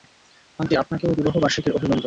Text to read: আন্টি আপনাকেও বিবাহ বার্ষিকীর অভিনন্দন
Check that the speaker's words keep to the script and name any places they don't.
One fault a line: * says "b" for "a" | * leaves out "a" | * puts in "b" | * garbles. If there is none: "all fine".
all fine